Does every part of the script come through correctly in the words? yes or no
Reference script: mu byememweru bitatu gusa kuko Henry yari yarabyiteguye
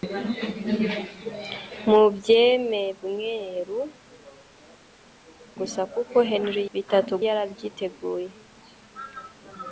no